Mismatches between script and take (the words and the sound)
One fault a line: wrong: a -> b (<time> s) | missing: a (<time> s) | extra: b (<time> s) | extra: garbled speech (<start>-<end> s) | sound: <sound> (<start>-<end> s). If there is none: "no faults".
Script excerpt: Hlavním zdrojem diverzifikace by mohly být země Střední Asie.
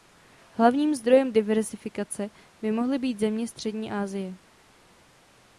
no faults